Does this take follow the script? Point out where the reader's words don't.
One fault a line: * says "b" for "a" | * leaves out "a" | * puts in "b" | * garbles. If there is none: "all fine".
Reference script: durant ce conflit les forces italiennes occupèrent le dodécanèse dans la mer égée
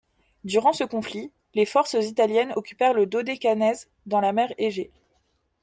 all fine